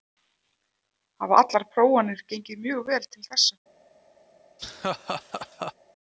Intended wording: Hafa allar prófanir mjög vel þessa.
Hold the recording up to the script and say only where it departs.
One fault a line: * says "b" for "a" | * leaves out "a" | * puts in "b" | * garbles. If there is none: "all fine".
* puts in "gengið"
* puts in "til"